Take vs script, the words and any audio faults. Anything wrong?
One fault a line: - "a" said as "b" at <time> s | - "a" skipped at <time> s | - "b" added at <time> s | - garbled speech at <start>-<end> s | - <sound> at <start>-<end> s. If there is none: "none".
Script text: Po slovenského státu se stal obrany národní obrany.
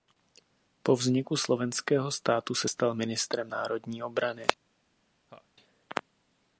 - "vzniku" added at 0.9 s
- "obrany" said as "ministrem" at 2.9 s
- laugh at 5.3-5.5 s